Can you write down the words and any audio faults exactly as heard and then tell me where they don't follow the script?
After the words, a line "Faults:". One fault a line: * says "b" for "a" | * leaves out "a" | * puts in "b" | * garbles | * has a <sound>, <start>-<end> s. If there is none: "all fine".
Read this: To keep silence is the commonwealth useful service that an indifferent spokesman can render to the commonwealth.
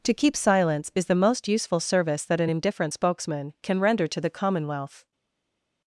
To keep silence is the most useful service that an indifferent spokesman can render to the commonwealth.
Faults:
* says "most" for "commonwealth"